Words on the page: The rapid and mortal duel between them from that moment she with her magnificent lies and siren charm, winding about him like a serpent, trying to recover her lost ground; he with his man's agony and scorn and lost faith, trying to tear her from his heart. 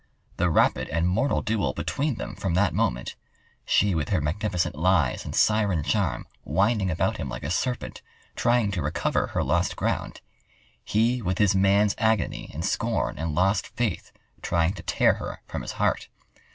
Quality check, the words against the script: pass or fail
pass